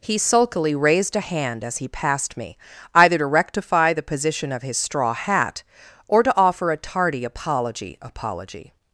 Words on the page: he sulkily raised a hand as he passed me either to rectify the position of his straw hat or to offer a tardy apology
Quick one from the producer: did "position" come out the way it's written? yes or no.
yes